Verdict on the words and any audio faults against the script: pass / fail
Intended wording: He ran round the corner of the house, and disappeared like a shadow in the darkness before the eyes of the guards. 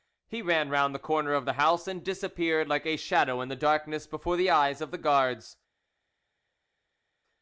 pass